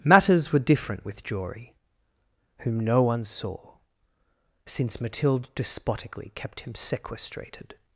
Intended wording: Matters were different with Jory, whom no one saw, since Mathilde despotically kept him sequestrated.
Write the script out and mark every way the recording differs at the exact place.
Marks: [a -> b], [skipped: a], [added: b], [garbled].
Matters were different with Jory, whom no one saw, since Mathilde despotically kept him sequestrated.